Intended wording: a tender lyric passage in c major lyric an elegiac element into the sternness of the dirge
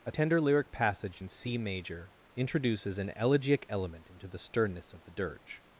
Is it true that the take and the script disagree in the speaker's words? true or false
true